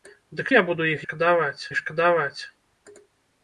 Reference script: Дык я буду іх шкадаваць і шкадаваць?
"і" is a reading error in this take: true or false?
false